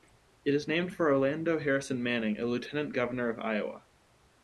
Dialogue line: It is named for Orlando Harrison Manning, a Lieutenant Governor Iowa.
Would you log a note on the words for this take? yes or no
yes